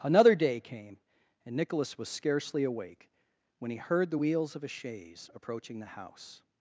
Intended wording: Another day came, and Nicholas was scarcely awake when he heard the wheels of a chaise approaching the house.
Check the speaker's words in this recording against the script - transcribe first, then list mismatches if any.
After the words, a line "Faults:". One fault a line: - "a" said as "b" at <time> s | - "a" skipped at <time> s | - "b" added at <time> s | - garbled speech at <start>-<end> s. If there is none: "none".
Another day came, and Nicholas was scarcely awake when he heard the wheels of a chaise approaching the house.
Faults:
none